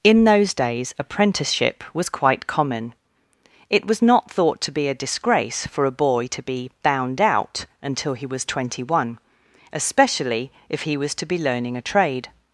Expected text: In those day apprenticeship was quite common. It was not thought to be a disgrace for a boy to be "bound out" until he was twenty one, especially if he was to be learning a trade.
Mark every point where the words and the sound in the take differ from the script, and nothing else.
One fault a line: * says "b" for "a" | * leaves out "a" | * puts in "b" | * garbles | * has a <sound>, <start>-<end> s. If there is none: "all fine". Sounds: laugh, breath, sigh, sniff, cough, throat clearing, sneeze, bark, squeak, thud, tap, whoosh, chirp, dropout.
* says "days" for "day"